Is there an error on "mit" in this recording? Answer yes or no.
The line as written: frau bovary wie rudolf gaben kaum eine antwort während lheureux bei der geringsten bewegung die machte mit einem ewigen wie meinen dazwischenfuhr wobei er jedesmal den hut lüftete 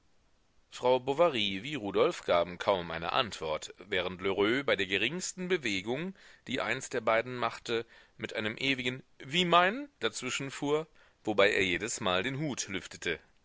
no